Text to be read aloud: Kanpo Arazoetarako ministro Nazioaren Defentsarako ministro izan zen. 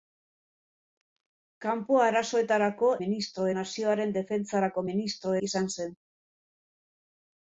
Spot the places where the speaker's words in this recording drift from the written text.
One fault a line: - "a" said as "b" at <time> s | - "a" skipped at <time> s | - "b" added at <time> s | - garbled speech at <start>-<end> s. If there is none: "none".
none